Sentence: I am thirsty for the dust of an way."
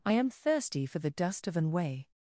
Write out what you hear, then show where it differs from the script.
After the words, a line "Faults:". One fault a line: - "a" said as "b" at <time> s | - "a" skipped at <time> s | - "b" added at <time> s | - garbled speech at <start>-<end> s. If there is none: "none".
I am thirsty for the dust of an way."
Faults:
none